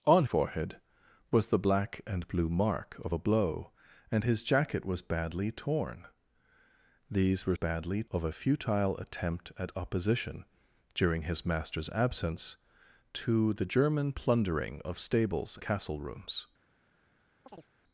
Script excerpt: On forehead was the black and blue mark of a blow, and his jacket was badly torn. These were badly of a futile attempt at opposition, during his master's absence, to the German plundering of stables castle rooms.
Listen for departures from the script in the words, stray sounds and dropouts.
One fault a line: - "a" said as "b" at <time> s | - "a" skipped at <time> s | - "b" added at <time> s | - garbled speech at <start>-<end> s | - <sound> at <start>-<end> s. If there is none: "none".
- chirp at 17.5-17.7 s